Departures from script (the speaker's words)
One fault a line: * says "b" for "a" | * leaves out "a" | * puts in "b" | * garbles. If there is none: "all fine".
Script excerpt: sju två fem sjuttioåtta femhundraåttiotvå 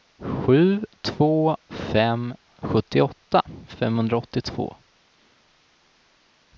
all fine